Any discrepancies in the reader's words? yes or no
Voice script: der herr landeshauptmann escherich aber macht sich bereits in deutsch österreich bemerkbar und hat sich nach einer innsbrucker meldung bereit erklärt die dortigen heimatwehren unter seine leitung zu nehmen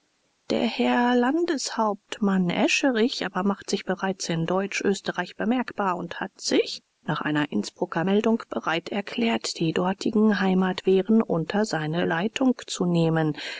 no